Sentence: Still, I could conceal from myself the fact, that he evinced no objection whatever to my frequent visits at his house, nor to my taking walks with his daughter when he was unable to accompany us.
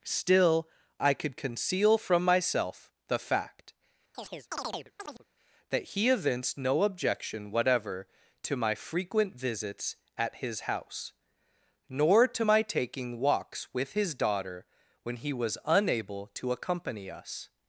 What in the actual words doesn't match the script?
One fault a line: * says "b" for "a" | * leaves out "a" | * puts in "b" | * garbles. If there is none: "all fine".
all fine